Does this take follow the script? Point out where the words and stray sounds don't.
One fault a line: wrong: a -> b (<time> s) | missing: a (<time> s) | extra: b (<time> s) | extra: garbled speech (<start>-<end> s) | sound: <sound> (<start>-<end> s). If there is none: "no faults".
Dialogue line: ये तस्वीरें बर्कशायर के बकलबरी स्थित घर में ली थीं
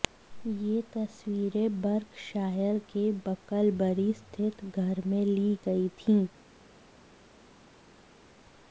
extra: गई (5.7 s)